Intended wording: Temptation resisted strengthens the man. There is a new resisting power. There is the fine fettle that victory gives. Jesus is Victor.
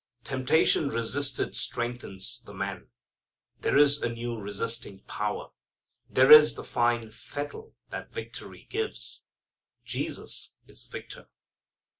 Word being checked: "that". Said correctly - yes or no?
yes